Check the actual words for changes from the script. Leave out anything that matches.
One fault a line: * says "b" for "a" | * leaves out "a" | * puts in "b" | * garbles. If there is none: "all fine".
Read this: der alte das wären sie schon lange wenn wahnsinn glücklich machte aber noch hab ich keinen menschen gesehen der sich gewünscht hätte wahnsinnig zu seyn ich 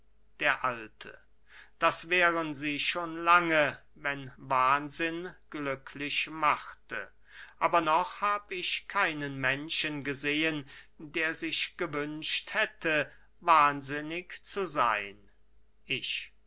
all fine